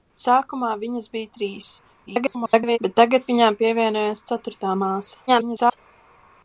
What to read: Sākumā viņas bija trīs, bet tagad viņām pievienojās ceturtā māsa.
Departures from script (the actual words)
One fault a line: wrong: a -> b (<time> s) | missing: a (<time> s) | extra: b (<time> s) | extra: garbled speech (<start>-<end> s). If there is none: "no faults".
extra: garbled speech (2.1-2.8 s)
extra: garbled speech (5.3-5.8 s)